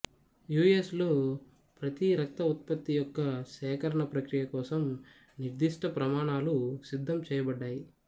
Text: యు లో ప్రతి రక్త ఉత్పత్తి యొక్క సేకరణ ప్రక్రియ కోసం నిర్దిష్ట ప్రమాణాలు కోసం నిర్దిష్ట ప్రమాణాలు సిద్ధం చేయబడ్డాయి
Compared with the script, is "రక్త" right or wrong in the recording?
right